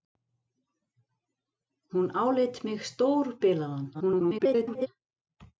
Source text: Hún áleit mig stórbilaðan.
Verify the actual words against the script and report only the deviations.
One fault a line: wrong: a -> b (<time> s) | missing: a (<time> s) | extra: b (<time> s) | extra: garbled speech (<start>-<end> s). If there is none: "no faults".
extra: garbled speech (3.9-4.9 s)